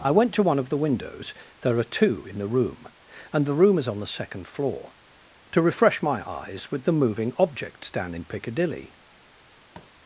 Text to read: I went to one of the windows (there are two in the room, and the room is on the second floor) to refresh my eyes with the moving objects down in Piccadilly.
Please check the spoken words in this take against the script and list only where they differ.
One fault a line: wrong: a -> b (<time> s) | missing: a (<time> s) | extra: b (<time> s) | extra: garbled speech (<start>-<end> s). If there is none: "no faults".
no faults